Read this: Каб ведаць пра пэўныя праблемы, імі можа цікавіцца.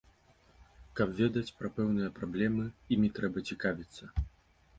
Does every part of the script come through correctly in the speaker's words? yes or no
no